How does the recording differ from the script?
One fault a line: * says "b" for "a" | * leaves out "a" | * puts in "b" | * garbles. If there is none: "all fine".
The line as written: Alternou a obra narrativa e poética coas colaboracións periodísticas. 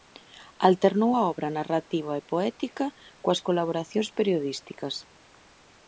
all fine